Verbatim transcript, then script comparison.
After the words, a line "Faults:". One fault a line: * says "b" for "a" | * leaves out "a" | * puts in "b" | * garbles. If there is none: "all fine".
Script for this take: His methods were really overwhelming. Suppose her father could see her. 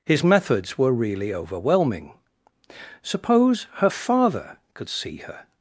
His methods were really overwhelming. Suppose her father could see her.
Faults:
all fine